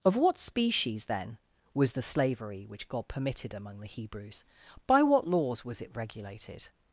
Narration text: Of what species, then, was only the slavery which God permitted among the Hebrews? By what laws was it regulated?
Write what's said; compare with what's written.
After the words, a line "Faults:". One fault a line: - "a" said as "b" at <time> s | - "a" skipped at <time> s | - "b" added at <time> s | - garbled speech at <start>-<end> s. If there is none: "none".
Of what species, then, was the slavery which God permitted among the Hebrews? By what laws was it regulated?
Faults:
- "only" skipped at 1.9 s